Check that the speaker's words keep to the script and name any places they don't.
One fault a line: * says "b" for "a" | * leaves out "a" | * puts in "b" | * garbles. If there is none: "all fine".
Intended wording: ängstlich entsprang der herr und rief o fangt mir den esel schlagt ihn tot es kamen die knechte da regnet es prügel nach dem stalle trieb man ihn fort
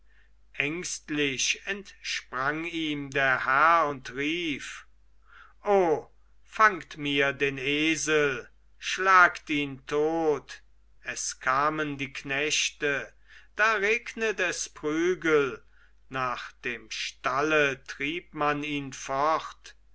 * puts in "ihm"